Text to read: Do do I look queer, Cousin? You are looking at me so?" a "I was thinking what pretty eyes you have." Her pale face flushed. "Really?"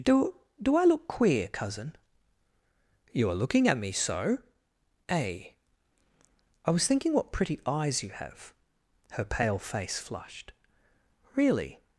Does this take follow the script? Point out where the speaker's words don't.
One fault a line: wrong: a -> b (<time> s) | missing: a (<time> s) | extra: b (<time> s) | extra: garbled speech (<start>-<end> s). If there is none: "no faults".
no faults